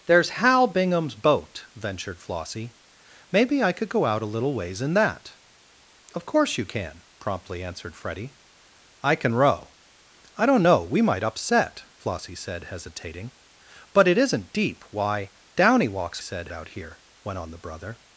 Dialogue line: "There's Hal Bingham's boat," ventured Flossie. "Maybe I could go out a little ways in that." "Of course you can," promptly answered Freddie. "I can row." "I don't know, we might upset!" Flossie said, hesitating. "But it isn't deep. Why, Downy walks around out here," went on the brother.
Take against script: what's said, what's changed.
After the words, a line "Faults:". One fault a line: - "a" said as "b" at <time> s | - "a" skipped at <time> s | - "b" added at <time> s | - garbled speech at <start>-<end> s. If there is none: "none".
"There's Hal Bingham's boat," ventured Flossie. "Maybe I could go out a little ways in that." "Of course you can," promptly answered Freddie. "I can row." "I don't know, we might upset!" Flossie said, hesitating. "But it isn't deep. Why, Downy walks said out here," went on the brother.
Faults:
- "around" said as "said" at 16.2 s